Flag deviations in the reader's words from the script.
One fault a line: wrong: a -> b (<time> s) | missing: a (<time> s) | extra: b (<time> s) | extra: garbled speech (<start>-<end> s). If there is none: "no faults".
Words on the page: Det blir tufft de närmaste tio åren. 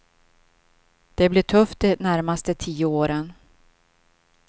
no faults